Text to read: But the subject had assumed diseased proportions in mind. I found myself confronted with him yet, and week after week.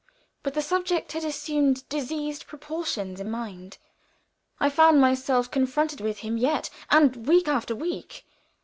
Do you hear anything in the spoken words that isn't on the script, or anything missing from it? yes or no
no